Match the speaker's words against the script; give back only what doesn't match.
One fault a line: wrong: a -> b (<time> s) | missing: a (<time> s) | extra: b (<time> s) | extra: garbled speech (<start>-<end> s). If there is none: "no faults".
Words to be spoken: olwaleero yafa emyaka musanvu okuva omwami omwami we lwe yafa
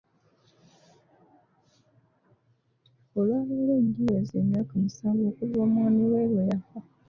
wrong: yafa -> giweze (3.9 s)
missing: omwami (6.0 s)